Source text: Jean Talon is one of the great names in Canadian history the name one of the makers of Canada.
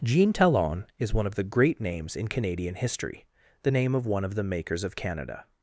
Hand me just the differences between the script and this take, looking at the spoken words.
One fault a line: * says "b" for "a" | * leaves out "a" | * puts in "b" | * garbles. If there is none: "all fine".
* puts in "of"